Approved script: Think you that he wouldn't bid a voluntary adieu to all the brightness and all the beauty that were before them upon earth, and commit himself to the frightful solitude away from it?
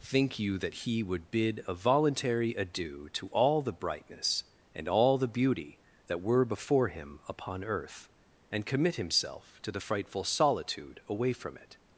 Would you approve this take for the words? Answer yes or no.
no